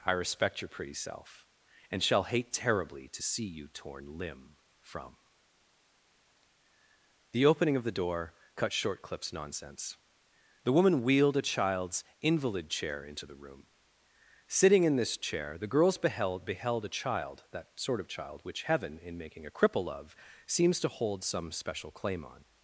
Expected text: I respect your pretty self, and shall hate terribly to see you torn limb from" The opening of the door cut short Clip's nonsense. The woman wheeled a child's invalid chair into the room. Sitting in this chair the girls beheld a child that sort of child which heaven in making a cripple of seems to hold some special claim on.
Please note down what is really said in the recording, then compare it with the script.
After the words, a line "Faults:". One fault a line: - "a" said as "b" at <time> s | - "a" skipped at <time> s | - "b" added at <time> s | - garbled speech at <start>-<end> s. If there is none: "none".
I respect your pretty self, and shall hate terribly to see you torn limb from" The opening of the door cut short Clip's nonsense. The woman wheeled a child's invalid chair into the room. Sitting in this chair the girls beheld beheld a child that sort of child which heaven in making a cripple of seems to hold some special claim on.
Faults:
- "beheld" added at 16.5 s